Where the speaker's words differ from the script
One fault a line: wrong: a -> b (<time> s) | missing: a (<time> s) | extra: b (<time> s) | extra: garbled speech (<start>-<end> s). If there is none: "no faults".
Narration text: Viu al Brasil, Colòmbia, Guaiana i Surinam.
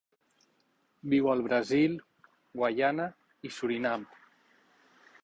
missing: Colòmbia (1.9 s)